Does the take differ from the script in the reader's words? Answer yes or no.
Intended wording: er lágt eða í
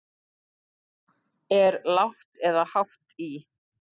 yes